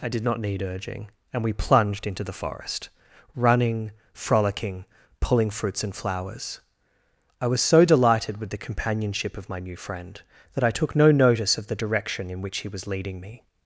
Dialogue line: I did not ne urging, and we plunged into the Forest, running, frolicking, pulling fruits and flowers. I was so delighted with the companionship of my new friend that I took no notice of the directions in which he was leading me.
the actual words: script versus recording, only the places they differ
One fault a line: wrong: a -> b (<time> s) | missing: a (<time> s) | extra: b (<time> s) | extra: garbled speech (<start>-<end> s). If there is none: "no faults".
wrong: ne -> need (0.4 s)
wrong: directions -> direction (11.8 s)